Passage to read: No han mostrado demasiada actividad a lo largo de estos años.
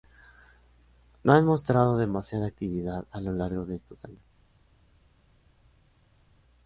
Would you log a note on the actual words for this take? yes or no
no